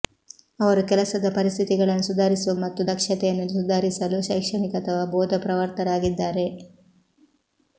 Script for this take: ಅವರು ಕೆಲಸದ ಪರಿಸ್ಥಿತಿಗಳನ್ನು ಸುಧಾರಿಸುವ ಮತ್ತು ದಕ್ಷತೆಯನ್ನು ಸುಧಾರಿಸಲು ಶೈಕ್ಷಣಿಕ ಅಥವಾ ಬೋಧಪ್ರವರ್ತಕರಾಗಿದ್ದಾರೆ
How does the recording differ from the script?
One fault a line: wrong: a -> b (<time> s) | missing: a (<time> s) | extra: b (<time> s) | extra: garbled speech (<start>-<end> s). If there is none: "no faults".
no faults